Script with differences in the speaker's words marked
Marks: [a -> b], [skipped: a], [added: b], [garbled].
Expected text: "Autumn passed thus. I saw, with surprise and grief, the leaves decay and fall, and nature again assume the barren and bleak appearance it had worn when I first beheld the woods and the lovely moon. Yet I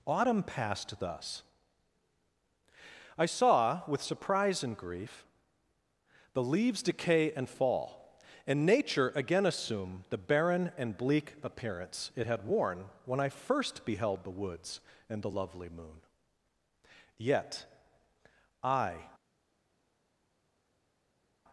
"Autumn passed thus. I saw, with surprise and grief, the leaves decay and fall, and nature again assume the barren and bleak appearance it had worn when I first beheld the woods and the lovely moon. Yet I